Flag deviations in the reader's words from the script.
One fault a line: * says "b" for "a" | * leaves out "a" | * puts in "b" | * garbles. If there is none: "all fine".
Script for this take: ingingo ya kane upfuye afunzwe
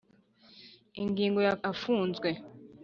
* leaves out "kane upfuye"